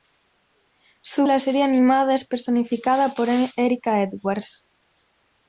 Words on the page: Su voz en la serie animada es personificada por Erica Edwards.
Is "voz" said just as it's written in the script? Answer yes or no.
no